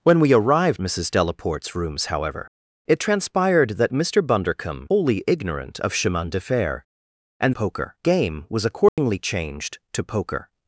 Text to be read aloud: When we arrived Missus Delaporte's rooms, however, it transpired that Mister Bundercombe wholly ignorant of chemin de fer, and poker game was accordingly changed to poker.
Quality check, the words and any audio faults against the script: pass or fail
fail